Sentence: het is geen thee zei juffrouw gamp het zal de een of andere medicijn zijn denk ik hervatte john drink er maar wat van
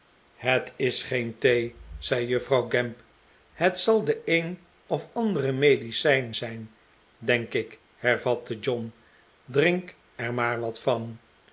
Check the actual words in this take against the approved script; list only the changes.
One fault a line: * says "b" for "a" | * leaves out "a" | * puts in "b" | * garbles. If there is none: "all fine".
all fine